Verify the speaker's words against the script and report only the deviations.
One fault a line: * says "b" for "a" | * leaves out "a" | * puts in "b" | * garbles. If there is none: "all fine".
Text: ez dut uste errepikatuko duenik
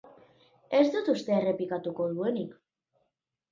all fine